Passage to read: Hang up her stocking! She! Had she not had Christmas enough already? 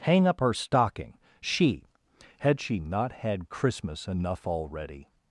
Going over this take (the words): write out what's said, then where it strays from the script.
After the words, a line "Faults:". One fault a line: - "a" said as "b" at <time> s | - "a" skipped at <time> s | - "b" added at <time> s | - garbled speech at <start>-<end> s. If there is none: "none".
Hang up her stocking! She! Had she not had Christmas enough already?
Faults:
none